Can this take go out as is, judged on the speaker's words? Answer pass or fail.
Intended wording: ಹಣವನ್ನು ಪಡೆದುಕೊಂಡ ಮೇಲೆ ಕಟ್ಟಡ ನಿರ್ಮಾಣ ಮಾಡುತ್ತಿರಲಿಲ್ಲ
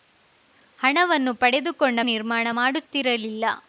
fail